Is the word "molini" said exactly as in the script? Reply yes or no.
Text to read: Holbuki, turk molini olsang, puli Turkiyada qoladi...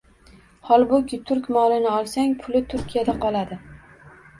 yes